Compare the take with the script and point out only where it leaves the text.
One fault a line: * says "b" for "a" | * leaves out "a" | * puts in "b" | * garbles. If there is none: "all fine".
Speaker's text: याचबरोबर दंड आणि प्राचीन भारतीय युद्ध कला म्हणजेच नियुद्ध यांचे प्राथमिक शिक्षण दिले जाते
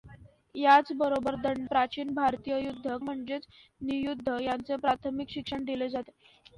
* leaves out "आणि"
* leaves out "कला"